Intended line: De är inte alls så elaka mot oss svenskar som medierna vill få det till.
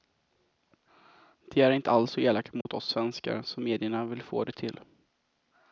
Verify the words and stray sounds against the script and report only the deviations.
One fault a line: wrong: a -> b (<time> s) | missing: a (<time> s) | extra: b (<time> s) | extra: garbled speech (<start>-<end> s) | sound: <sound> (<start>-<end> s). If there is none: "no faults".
sound: dropout (2.6-2.7 s)